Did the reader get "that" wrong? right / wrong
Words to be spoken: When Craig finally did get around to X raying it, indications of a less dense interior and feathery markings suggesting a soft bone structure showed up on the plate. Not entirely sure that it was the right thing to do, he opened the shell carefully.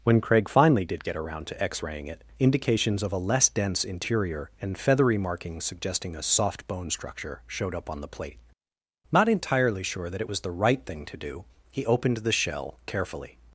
right